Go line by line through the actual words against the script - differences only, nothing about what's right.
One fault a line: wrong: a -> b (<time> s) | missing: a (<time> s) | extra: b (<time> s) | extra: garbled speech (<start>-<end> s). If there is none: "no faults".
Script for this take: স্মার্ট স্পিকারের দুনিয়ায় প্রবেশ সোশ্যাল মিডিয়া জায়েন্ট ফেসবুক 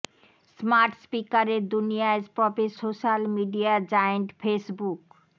no faults